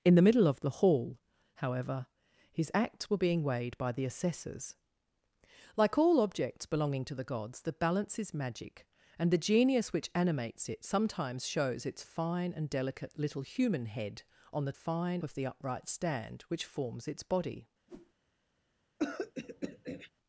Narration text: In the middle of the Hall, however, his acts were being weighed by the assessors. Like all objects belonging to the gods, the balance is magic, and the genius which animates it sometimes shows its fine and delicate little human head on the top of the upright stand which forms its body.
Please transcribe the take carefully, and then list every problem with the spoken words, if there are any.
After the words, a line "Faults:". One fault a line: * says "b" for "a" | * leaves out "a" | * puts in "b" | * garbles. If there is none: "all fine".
In the middle of the Hall, however, his acts were being weighed by the assessors. Like all objects belonging to the gods, the balance is magic, and the genius which animates it sometimes shows its fine and delicate little human head on the fine of the upright stand which forms its body.
Faults:
* says "fine" for "top"